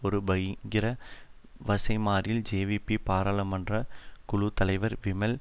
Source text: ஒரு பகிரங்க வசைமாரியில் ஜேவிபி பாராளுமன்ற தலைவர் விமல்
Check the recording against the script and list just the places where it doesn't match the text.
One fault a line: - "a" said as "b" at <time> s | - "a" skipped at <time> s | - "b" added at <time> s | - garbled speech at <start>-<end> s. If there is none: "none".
- "குழு" added at 4.2 s